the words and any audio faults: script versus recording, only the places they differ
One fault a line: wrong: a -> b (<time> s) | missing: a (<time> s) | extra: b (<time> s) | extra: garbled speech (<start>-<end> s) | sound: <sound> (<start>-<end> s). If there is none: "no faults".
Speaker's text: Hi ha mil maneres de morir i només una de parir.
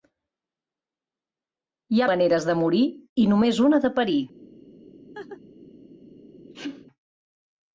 missing: mil (2.1 s)
sound: laugh (5.1-5.4 s)
sound: sneeze (6.4-6.9 s)